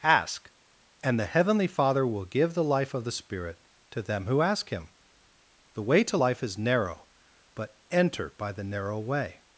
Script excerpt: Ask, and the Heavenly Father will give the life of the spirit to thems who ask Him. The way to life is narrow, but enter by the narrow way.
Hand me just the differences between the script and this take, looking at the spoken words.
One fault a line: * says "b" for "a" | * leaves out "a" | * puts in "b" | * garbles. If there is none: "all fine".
* says "them" for "thems"